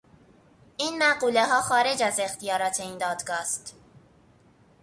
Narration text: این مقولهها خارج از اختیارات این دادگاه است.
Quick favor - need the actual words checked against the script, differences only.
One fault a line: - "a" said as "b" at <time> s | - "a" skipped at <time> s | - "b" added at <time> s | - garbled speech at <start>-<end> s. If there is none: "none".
none